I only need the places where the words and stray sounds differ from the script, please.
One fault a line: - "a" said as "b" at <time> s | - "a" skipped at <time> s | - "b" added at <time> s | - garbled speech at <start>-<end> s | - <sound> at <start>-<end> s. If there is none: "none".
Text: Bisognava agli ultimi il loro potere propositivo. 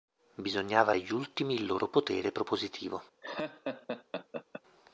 - laugh at 3.2-4.6 s